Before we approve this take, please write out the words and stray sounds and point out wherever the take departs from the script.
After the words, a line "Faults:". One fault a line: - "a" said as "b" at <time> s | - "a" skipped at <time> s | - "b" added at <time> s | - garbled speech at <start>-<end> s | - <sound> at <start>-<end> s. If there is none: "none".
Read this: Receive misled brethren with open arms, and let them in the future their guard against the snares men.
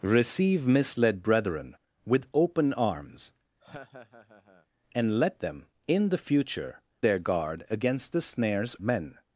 Receive misled brethren with open arms, and let them in the future their guard against the snares men.
Faults:
- laugh at 3.6-4.7 s